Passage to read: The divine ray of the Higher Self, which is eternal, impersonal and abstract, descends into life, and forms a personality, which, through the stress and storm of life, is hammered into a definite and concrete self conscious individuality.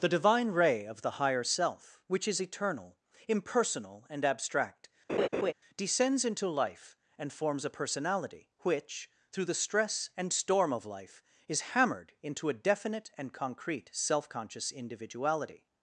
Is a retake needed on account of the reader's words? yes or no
no